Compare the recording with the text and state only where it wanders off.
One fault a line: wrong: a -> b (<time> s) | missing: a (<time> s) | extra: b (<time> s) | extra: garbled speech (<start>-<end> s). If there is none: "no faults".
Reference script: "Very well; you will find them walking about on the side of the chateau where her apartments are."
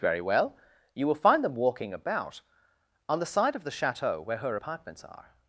no faults